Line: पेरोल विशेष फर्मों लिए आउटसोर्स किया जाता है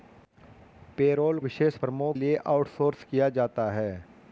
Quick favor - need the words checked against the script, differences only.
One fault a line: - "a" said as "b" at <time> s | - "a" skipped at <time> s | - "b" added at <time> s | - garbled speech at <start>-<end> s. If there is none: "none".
none